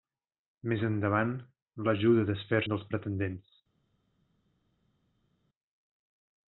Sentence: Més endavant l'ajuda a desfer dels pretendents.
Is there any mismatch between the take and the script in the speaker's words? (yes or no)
no